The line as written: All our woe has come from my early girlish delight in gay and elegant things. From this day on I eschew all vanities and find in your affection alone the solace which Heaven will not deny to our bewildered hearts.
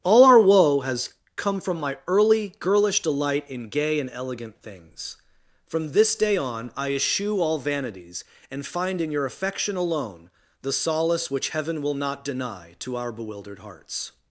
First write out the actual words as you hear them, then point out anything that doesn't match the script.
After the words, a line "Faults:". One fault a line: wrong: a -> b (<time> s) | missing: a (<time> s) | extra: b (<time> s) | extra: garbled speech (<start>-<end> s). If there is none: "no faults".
All our woe has come from my early girlish delight in gay and elegant things. From this day on I eschew all vanities and find in your affection alone the solace which Heaven will not deny to our bewildered hearts.
Faults:
no faults